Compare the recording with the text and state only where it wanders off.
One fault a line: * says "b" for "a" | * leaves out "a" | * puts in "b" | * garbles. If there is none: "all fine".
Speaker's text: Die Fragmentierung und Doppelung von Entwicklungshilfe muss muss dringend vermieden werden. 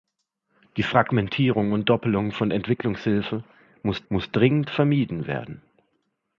all fine